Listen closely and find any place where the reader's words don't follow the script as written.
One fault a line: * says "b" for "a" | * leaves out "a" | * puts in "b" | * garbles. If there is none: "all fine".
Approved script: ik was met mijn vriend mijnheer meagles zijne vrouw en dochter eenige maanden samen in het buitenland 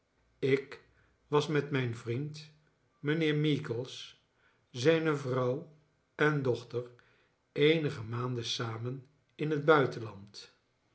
all fine